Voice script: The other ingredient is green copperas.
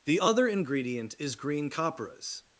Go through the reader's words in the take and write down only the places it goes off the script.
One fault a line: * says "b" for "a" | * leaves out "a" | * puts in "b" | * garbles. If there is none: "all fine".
all fine